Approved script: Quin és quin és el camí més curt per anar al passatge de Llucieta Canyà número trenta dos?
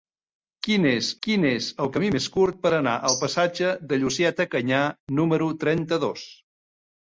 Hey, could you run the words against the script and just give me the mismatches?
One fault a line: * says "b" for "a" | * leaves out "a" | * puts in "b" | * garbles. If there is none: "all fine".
all fine